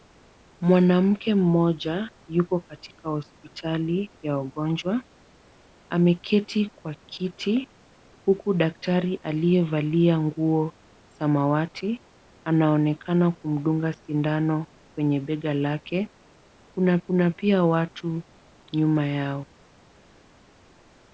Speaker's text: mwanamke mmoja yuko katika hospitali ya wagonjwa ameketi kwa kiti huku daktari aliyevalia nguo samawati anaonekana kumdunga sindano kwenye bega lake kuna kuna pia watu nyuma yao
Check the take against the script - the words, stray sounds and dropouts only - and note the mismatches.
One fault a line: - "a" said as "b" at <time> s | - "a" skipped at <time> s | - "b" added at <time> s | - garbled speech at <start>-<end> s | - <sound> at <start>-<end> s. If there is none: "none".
none